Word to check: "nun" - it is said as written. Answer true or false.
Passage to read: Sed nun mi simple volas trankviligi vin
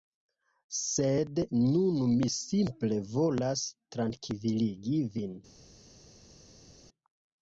true